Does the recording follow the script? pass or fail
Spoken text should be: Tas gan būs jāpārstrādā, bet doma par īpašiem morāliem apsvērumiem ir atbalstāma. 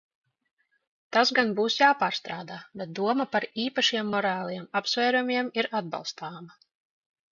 pass